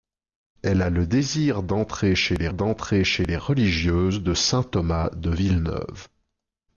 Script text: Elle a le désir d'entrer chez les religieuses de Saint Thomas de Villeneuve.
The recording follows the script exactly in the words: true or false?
false